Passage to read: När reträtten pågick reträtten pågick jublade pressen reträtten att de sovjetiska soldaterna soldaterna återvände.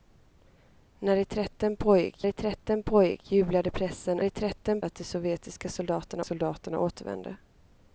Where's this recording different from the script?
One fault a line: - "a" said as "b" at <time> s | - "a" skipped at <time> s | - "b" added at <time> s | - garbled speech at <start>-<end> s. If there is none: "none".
none